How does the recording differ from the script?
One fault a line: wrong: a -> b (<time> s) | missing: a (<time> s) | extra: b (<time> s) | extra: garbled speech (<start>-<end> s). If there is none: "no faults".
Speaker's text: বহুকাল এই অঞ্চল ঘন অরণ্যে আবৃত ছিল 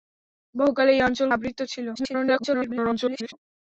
missing: ঘন অরণ্যে (1.3 s)
extra: garbled speech (2.0-3.3 s)